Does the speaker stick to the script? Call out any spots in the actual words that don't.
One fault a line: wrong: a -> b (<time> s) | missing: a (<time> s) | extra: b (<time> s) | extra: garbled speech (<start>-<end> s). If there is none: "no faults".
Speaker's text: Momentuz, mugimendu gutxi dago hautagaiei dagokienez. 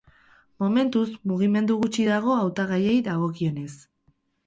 no faults